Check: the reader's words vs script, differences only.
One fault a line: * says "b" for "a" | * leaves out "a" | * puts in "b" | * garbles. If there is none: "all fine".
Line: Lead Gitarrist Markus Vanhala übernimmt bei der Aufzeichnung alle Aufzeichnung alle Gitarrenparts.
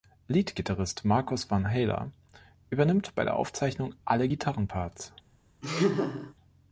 * leaves out "Aufzeichnung alle"